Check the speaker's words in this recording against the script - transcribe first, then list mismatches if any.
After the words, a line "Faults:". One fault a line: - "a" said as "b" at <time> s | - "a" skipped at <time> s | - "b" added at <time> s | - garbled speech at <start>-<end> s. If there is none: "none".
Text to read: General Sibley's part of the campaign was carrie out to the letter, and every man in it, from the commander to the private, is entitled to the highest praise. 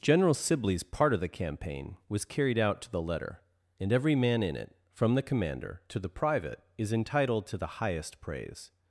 General Sibley's part of the campaign was carried out to the letter, and every man in it, from the commander to the private, is entitled to the highest praise.
Faults:
- "carrie" said as "carried" at 2.2 s